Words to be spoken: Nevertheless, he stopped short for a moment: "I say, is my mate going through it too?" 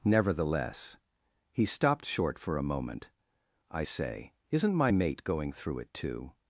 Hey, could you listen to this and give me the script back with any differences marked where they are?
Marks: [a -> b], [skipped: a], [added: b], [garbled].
Nevertheless, he stopped short for a moment: "I say, [is -> isn't] my mate going through it too?"